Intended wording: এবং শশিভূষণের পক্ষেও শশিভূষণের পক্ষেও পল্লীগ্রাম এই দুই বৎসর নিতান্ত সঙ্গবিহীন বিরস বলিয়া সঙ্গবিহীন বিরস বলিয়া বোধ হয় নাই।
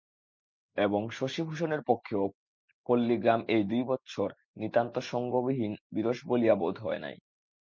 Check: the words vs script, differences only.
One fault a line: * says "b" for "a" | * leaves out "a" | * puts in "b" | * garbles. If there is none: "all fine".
* leaves out "শশিভূষণের পক্ষেও"
* leaves out "সঙ্গবিহীন বিরস বলিয়া"